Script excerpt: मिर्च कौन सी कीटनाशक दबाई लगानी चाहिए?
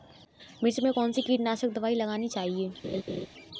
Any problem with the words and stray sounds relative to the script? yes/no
yes